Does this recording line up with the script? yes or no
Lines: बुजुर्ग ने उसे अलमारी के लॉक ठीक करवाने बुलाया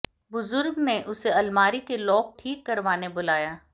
yes